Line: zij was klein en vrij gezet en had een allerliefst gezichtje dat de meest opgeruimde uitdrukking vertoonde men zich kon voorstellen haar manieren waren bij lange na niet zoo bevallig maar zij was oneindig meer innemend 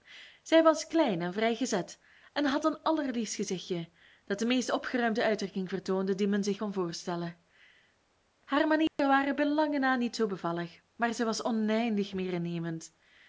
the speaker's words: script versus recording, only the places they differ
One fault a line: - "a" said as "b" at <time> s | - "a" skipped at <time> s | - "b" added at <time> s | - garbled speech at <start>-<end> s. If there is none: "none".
- "die" added at 6.2 s